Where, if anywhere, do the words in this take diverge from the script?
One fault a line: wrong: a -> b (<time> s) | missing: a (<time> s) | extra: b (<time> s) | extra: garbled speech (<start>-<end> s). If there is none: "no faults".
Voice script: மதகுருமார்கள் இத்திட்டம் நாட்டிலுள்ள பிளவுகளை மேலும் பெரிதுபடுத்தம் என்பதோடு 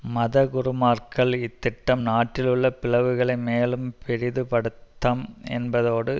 no faults